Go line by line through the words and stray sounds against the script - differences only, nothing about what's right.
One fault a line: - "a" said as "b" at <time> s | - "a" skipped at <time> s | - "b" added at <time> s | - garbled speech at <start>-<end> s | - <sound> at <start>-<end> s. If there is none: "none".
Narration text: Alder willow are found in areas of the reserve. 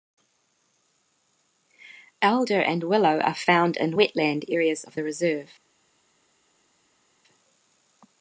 - "and" added at 2.6 s
- "wetland" added at 4.0 s